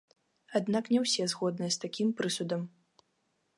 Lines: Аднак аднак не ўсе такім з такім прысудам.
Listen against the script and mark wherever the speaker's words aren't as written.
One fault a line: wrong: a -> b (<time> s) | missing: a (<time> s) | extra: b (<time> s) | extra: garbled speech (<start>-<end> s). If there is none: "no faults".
missing: аднак (0.9 s)
wrong: такім -> згодныя (1.3 s)